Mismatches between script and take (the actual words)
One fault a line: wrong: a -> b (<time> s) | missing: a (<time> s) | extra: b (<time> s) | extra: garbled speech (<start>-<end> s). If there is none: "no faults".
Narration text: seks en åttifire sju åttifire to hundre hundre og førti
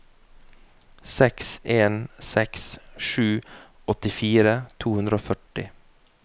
wrong: åttifire -> seks (2.3 s)
missing: hundre (5.2 s)